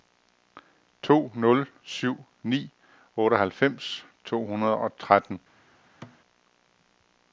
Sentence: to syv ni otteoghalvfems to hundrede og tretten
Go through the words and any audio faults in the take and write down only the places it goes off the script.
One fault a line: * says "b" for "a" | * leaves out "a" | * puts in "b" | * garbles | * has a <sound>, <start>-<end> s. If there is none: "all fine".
* puts in "nul"
* has a thud, 6.0-6.2 s